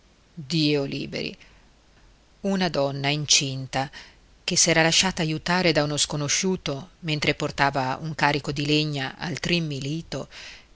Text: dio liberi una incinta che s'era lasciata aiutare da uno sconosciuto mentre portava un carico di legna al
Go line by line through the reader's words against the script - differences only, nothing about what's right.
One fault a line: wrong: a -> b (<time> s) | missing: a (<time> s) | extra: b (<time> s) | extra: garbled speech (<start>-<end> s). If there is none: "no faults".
extra: donna (2.7 s)